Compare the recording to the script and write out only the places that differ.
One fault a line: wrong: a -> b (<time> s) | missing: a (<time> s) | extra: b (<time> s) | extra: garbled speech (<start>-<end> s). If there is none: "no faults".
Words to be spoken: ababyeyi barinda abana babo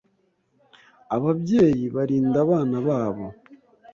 no faults